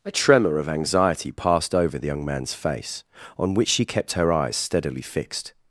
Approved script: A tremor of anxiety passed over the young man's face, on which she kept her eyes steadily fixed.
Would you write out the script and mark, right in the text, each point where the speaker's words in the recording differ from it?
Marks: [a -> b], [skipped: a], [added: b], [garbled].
A tremor of anxiety passed over the young man's face, on which she kept her eyes steadily fixed.